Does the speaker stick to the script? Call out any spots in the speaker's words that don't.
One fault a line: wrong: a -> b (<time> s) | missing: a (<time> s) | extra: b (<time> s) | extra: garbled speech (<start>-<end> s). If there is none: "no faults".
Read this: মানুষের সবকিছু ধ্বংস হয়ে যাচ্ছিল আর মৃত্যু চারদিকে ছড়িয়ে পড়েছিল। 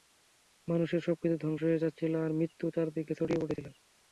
no faults